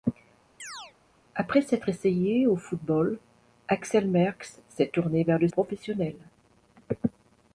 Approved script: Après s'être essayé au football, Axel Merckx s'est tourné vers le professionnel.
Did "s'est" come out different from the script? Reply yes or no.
no